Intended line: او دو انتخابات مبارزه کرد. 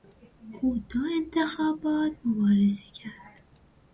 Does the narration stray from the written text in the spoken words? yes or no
no